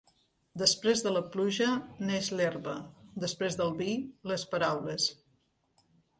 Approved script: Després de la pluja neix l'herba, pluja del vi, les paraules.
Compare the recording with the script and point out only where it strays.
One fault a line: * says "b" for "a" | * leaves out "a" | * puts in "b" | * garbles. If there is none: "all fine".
* says "després" for "pluja"